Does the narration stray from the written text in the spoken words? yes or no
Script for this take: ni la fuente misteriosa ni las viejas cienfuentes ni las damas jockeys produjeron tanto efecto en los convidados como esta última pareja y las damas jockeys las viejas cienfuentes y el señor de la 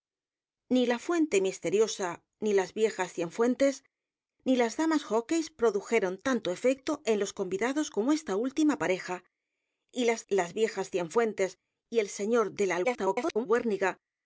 yes